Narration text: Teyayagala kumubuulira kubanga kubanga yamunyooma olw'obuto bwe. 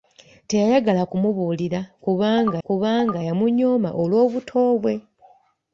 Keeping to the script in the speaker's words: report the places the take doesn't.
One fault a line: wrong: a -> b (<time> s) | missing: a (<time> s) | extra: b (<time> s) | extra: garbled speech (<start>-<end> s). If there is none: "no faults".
no faults